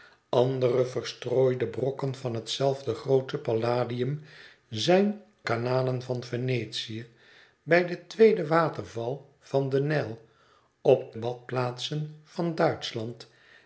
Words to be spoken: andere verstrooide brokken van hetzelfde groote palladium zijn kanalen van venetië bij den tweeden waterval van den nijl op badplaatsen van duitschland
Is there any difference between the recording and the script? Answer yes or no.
no